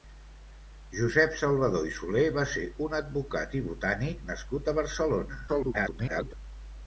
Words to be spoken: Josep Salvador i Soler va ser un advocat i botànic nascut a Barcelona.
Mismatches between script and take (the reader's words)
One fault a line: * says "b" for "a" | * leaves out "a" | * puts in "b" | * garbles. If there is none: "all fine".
* garbles